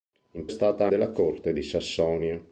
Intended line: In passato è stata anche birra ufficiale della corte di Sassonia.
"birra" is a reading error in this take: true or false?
true